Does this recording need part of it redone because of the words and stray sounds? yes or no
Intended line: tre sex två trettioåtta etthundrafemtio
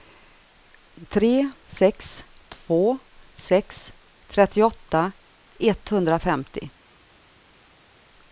yes